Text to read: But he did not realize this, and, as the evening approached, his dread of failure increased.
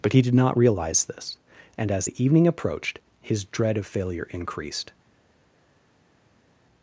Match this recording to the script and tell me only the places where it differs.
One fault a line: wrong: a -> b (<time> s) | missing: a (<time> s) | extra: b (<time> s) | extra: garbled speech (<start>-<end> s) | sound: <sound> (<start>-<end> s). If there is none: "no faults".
no faults